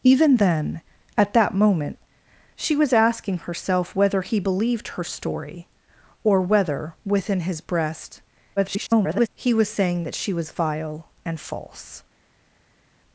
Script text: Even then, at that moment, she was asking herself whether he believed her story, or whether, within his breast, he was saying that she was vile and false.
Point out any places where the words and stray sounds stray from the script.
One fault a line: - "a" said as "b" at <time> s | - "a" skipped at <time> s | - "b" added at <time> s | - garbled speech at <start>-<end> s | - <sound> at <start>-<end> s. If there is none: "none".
- garbled speech at 8.6-9.3 s